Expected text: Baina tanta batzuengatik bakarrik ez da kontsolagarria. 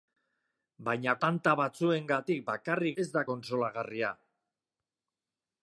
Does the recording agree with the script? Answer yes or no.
yes